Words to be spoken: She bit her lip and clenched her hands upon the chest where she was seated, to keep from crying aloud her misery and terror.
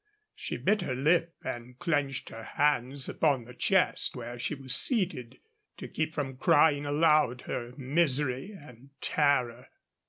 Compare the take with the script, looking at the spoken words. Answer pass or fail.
pass